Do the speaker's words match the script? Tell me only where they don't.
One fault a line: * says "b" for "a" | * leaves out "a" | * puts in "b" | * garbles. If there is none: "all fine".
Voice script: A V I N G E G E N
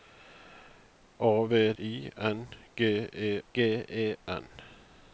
all fine